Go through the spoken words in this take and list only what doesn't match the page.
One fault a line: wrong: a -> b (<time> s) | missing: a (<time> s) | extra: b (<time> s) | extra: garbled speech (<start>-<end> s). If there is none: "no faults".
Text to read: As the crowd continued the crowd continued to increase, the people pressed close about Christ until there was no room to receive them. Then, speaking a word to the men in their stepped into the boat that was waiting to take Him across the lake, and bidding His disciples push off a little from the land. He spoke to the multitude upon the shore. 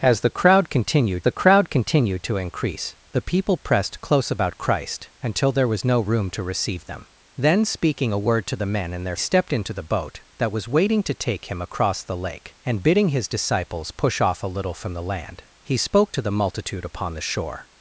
no faults